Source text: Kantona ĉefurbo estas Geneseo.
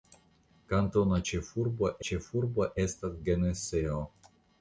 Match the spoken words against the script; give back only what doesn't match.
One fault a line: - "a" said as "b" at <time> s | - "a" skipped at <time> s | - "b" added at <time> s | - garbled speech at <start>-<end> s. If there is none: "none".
- "ĉefurbo" added at 2.1 s